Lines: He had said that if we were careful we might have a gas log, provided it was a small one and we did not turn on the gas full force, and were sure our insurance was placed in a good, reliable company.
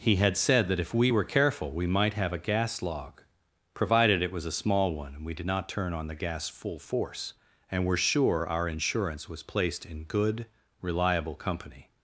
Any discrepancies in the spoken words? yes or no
yes